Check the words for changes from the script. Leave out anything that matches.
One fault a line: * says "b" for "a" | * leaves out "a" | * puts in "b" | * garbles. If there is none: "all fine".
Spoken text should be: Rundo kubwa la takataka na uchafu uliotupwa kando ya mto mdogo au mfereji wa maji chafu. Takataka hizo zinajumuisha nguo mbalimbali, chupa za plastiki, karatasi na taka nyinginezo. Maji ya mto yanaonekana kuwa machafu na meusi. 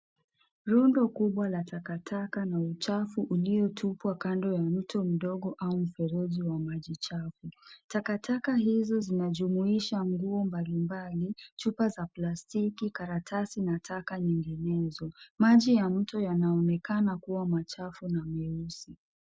all fine